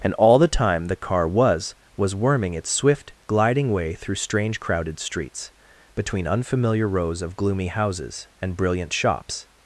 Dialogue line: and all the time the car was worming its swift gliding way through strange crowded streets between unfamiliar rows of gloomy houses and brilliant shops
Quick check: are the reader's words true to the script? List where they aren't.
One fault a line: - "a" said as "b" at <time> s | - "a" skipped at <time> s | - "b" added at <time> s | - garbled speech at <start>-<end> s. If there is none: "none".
- "was" added at 1.9 s